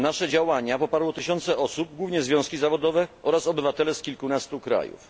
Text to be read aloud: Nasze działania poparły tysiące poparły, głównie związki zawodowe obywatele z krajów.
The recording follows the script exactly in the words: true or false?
false